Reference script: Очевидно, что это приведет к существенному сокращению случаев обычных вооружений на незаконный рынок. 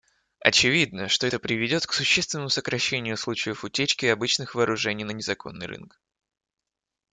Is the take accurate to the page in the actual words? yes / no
no